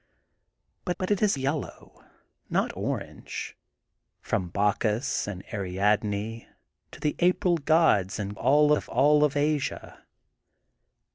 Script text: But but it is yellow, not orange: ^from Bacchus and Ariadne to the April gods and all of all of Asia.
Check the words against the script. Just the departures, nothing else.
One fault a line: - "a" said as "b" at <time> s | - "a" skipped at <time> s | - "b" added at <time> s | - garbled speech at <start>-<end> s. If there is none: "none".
none